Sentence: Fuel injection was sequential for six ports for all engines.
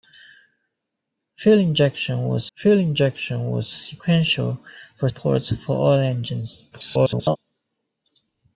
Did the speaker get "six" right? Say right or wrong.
wrong